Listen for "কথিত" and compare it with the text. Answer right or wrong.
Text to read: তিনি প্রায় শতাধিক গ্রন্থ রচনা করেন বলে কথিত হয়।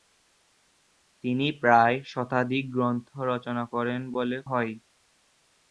wrong